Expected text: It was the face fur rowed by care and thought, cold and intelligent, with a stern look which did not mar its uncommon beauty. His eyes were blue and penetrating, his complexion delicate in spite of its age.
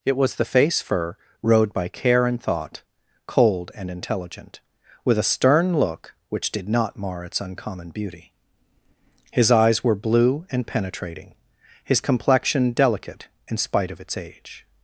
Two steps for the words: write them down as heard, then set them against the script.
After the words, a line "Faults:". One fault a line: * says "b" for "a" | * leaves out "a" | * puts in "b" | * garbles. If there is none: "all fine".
It was the face fur rowed by care and thought, cold and intelligent, with a stern look which did not mar its uncommon beauty. His eyes were blue and penetrating, his complexion delicate in spite of its age.
Faults:
all fine